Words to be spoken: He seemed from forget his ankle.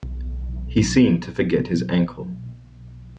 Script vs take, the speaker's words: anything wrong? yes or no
yes